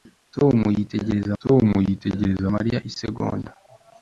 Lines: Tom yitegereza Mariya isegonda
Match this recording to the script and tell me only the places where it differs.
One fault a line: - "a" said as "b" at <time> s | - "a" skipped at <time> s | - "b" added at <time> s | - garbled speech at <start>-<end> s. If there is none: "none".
- "tom yitegereza" added at 1.4 s